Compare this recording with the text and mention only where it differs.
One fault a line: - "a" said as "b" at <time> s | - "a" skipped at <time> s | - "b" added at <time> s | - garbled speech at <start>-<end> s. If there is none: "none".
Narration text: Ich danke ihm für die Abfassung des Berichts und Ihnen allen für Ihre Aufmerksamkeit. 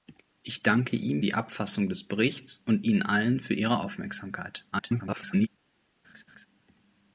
- "für" skipped at 1.2 s
- garbled speech at 4.7-5.5 s